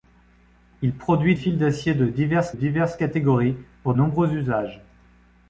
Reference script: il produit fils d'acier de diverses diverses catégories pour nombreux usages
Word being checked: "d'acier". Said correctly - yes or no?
yes